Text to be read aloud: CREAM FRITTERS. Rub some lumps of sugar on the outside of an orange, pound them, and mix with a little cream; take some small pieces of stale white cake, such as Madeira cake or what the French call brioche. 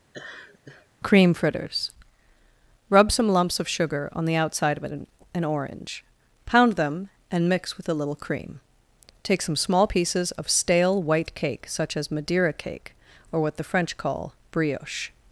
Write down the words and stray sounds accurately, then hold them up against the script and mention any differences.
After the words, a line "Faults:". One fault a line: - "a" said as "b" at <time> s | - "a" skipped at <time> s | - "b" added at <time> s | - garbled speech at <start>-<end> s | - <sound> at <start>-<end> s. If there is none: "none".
CREAM FRITTERS. Rub some lumps of sugar on the outside of an an orange, pound them, and mix with a little cream; take some small pieces of stale white cake, such as Madeira cake or what the French call brioche.
Faults:
- laugh at 0.1-0.9 s
- "an" added at 5.3 s